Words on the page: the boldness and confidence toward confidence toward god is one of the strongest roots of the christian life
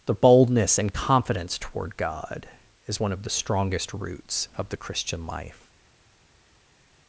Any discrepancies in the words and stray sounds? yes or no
yes